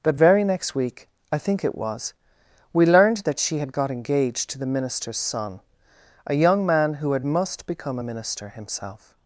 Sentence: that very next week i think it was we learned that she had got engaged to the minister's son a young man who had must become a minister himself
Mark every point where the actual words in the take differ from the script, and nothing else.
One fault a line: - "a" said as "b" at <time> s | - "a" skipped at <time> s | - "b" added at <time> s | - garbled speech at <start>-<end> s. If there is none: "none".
none